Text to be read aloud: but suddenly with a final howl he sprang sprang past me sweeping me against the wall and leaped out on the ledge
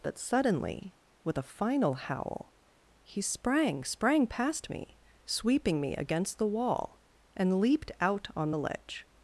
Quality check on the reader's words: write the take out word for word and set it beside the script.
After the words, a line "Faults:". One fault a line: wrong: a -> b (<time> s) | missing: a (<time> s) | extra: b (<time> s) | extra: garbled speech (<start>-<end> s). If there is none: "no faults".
but suddenly with a final howl he sprang sprang past me sweeping me against the wall and leaped out on the ledge
Faults:
no faults